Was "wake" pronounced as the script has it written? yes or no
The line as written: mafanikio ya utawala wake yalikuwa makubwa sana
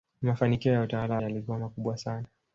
no